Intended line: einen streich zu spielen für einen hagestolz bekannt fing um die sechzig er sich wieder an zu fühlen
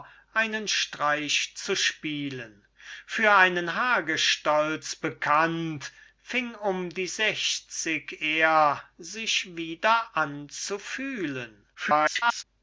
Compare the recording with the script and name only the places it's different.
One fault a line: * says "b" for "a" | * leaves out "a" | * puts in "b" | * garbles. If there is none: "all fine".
* garbles